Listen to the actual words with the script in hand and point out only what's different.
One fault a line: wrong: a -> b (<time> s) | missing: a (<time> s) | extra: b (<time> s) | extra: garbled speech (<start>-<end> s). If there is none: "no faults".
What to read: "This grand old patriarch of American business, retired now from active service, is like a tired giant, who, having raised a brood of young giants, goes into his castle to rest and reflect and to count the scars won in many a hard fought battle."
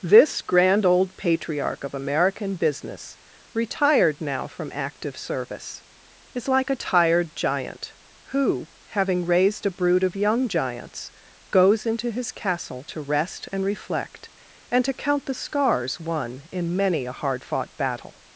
no faults